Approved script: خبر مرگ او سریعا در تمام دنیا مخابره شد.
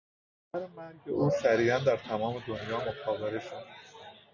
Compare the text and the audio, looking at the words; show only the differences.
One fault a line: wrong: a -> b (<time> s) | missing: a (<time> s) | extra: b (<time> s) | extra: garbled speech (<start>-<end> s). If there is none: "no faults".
no faults